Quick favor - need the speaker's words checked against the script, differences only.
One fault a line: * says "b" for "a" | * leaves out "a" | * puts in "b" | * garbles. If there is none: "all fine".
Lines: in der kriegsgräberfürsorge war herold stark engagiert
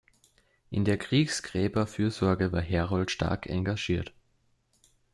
all fine